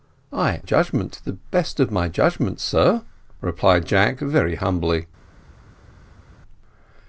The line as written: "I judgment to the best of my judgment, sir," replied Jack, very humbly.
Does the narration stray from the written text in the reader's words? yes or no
no